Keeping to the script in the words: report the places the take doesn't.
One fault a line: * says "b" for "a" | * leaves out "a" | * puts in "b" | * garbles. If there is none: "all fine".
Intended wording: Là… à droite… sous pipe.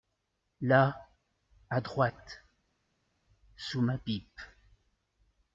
* puts in "ma"